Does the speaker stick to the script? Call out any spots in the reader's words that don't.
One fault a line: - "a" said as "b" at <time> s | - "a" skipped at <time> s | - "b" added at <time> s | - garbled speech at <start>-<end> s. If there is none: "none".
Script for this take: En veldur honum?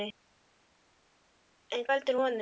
none